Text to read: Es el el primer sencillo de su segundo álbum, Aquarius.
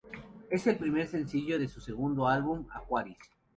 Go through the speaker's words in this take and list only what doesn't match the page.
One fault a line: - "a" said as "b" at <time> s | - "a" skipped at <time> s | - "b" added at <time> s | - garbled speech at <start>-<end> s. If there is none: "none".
- "el" skipped at 0.8 s